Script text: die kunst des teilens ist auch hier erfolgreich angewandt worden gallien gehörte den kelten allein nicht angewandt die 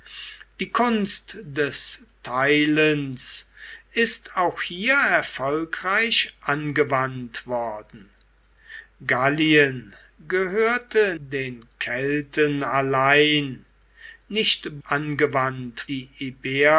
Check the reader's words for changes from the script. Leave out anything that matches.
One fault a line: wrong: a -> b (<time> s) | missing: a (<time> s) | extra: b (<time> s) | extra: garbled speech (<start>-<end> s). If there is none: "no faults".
no faults